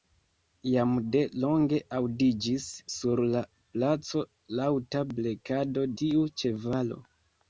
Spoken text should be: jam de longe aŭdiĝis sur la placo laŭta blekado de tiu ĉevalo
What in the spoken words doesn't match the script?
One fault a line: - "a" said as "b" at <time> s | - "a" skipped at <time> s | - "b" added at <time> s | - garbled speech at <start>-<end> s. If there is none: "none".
- "de" skipped at 5.9 s